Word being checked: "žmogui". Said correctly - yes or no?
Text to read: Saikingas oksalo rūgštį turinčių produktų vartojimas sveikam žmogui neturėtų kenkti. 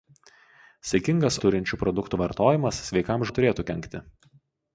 no